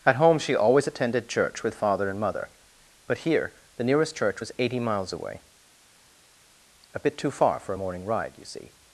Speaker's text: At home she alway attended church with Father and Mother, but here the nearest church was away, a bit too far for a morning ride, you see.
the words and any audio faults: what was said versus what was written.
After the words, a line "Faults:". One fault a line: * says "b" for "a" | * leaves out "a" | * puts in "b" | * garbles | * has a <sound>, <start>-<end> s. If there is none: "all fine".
At home she always attended church with Father and Mother, but here the nearest church was eighty miles away, a bit too far for a morning ride, you see.
Faults:
* says "always" for "alway"
* puts in "eighty miles"